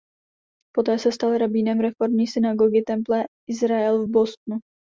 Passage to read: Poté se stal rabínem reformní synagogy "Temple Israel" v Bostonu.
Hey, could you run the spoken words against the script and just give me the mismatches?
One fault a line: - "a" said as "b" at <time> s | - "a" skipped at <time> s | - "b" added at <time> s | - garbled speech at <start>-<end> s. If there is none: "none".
none